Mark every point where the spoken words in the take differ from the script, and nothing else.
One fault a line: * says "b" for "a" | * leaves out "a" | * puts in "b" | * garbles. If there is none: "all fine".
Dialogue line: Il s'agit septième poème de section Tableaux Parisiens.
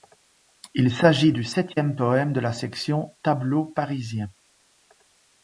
* puts in "du"
* puts in "la"